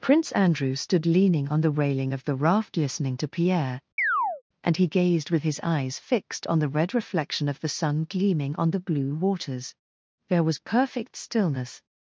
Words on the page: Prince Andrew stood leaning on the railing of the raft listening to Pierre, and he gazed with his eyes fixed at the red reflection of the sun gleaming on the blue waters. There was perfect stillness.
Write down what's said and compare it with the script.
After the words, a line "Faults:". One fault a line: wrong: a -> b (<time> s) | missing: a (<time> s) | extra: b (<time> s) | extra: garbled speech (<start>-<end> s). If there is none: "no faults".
Prince Andrew stood leaning on the railing of the raft listening to Pierre, and he gazed with his eyes fixed on the red reflection of the sun gleaming on the blue waters. There was perfect stillness.
Faults:
wrong: at -> on (6.5 s)